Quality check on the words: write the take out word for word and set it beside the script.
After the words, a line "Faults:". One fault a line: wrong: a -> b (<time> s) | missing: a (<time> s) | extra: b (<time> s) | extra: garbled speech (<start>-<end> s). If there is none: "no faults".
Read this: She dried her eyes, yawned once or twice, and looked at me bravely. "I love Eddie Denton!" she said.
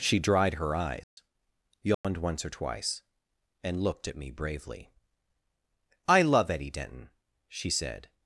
She dried her eyes, yawned once or twice, and looked at me bravely. "I love Eddie Denton!" she said.
Faults:
no faults